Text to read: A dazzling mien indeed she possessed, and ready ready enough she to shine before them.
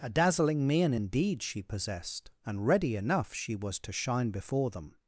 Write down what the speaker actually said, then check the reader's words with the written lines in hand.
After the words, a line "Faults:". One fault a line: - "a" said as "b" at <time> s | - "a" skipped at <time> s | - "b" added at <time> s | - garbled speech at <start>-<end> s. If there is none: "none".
A dazzling mien indeed she possessed, and ready enough she was to shine before them.
Faults:
- "ready" skipped at 2.9 s
- "was" added at 3.5 s